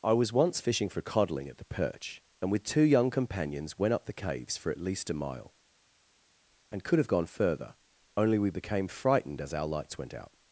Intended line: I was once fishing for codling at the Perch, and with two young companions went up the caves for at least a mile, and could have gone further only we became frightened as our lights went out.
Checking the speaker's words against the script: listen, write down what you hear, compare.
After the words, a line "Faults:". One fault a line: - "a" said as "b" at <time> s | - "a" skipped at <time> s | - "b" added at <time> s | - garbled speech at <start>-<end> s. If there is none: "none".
I was once fishing for codling at the Perch, and with two young companions went up the caves for at least a mile, and could have gone further only we became frightened as our lights went out.
Faults:
none